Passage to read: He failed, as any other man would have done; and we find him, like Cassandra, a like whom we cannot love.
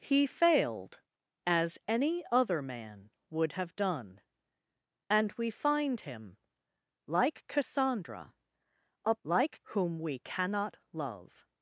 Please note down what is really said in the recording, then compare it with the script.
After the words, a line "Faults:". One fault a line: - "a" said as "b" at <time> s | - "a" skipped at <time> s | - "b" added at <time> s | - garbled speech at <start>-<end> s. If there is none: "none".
He failed, as any other man would have done; and we find him, like Cassandra, a like whom we cannot love.
Faults:
none